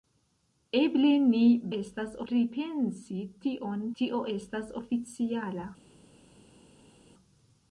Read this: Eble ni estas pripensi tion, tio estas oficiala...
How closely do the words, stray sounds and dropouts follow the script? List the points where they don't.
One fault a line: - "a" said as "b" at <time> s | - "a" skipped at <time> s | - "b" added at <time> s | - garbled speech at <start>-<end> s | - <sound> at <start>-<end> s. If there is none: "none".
none